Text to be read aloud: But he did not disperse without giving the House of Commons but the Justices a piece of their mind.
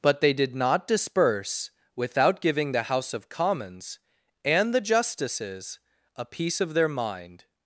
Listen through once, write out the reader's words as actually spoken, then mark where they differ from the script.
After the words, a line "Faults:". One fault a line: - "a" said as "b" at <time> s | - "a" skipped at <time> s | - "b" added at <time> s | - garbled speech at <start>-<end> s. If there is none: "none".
But they did not disperse without giving the House of Commons and the Justices a piece of their mind.
Faults:
- "he" said as "they" at 0.2 s
- "but" said as "and" at 4.4 s